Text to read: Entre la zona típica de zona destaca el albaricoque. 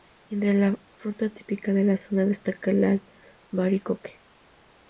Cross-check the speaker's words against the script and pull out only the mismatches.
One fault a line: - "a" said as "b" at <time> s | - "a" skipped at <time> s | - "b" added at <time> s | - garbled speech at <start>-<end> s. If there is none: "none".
- "zona" said as "fruta" at 0.9 s
- "la" added at 1.8 s